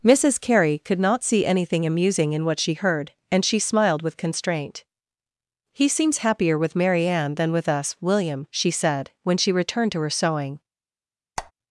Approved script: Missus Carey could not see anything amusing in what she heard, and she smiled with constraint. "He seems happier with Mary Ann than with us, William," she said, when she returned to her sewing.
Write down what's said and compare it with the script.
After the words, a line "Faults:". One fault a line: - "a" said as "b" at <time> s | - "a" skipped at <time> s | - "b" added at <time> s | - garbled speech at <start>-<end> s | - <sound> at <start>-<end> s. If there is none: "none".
Missus Carey could not see anything amusing in what she heard, and she smiled with constraint. "He seems happier with Mary Ann than with us, William," she said, when she returned to her sewing.
Faults:
- squeak at 11.4-11.5 s